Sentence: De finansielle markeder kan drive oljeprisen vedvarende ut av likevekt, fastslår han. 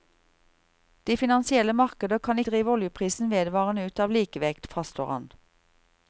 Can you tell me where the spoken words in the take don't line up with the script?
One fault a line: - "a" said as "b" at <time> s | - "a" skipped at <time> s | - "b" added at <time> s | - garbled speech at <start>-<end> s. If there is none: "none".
none